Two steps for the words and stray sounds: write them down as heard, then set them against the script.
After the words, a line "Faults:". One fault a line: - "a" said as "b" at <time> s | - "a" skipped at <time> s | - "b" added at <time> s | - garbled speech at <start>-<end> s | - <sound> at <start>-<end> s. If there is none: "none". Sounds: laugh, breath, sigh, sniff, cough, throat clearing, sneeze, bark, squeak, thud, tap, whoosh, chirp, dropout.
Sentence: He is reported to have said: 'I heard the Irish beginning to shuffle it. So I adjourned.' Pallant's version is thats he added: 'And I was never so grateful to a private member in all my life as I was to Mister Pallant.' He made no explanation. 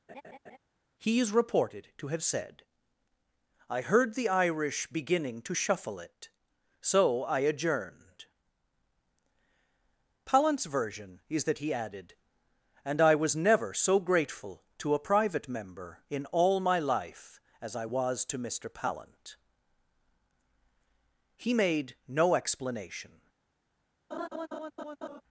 He is reported to have said: 'I heard the Irish beginning to shuffle it. So I adjourned.' Pallant's version is that he added: 'And I was never so grateful to a private member in all my life as I was to Mister Pallant.' He made no explanation.
Faults:
- laugh at 0.1-0.6 s
- "thats" said as "that" at 11.4 s
- laugh at 24.1-25.2 s